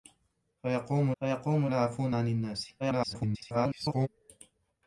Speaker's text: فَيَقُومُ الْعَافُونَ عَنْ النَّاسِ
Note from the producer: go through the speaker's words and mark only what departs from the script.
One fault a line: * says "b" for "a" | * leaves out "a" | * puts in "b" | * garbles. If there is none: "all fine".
* puts in "فَيَقُومُ"
* garbles